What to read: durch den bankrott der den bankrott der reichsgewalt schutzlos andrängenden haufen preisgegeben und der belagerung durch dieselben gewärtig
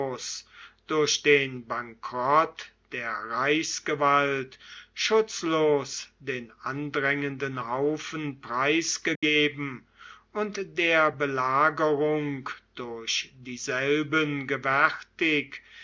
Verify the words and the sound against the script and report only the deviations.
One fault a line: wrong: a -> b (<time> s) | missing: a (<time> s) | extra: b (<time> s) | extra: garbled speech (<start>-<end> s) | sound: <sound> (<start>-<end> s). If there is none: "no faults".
missing: den bankrott der (3.1 s)
extra: den (6.2 s)
sound: dropout (9.2-9.2 s)